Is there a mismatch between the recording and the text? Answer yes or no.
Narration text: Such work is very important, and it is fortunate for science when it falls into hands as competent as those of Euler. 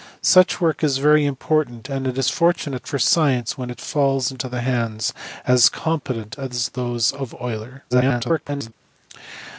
yes